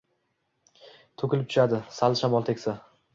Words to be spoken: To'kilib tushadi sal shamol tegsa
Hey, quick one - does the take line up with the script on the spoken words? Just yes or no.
yes